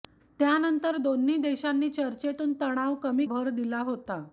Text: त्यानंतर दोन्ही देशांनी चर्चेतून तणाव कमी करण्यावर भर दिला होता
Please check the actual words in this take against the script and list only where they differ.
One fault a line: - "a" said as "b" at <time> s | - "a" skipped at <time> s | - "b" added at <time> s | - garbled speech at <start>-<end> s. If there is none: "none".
- "करण्यावर" skipped at 3.2 s